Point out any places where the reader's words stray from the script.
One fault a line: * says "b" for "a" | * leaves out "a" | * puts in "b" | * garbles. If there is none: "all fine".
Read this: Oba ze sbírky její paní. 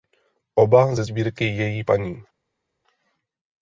all fine